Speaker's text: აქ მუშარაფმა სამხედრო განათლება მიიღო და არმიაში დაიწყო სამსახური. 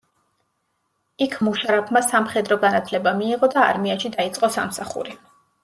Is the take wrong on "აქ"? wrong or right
wrong